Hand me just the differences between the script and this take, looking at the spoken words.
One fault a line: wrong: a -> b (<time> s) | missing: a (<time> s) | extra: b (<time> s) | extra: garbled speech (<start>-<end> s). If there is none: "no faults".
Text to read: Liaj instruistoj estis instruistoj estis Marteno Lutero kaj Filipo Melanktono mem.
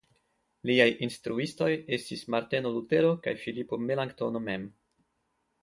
missing: instruistoj estis (2.2 s)